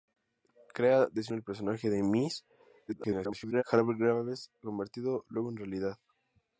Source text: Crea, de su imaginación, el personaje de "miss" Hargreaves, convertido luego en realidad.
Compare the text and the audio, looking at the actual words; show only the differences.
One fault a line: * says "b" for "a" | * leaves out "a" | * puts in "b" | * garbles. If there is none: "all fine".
* leaves out "imaginación"
* garbles